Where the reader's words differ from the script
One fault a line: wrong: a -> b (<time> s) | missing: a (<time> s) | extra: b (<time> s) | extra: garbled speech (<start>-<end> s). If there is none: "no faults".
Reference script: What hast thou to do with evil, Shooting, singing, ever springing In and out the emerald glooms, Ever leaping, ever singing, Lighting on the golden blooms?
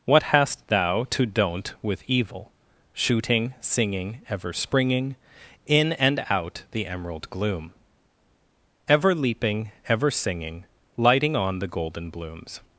wrong: do -> don't (1.3 s)
wrong: glooms -> gloom (7.3 s)